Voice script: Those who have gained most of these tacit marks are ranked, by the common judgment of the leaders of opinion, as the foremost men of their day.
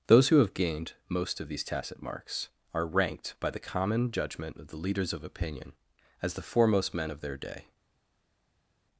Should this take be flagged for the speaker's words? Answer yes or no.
no